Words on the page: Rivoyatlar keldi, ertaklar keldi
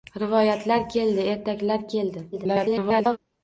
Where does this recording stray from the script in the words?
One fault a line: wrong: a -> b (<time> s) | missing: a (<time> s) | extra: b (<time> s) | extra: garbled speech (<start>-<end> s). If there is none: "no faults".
extra: garbled speech (2.3-3.2 s)